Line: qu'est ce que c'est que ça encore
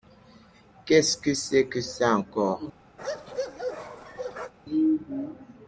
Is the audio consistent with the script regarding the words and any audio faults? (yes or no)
no